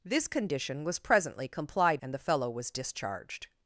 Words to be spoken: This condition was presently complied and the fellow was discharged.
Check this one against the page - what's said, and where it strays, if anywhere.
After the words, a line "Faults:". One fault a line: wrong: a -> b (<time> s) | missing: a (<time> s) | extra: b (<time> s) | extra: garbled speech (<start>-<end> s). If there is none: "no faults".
This condition was presently complied and the fellow was discharged.
Faults:
no faults